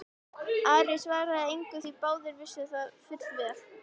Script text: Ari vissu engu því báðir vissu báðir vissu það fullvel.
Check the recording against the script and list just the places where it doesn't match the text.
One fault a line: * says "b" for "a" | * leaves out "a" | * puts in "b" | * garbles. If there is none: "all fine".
* says "svaraði" for "vissu"
* leaves out "báðir vissu"